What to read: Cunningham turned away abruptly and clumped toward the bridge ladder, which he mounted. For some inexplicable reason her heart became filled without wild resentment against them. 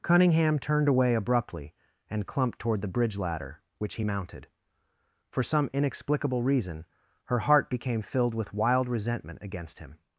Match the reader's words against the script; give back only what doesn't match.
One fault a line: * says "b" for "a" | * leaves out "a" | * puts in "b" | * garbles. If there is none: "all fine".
* says "with" for "without"
* says "him" for "them"